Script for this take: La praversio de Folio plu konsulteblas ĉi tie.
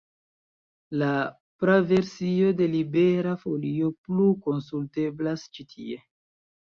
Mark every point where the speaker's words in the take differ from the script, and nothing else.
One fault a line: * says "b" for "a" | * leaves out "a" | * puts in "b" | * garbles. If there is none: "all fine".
* puts in "Libera"